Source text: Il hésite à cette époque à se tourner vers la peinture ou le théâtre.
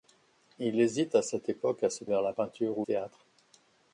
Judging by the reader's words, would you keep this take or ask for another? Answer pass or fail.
fail